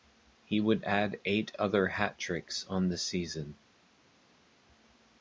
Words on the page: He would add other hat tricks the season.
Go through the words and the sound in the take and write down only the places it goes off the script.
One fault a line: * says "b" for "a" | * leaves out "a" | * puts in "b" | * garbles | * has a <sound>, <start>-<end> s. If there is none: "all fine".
* puts in "eight"
* puts in "on"